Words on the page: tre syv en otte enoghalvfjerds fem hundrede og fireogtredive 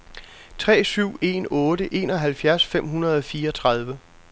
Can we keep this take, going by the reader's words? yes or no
yes